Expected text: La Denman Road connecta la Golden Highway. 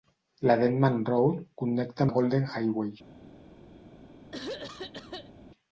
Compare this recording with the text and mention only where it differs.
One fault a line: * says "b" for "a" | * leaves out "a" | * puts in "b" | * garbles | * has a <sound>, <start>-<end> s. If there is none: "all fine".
* has a throat clearing, 4.3-5.3 s